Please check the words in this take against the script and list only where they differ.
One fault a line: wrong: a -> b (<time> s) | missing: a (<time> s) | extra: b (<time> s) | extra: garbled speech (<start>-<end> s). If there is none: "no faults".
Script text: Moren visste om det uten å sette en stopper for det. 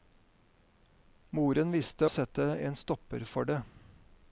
missing: om det uten (2.1 s)